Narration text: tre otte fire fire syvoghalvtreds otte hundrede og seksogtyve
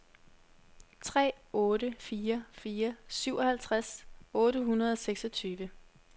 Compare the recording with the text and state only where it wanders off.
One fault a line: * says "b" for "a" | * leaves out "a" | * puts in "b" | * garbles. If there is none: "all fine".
all fine